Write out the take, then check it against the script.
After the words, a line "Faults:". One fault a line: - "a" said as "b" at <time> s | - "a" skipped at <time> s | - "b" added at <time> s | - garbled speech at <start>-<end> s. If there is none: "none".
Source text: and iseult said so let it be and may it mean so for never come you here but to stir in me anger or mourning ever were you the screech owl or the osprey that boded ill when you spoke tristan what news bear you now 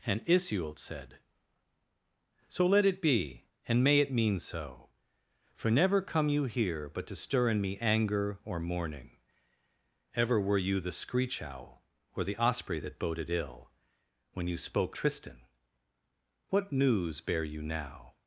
and iseult said so let it be and may it mean so for never come you here but to stir in me anger or mourning ever were you the screech owl or the osprey that boded ill when you spoke tristan what news bear you now
Faults:
none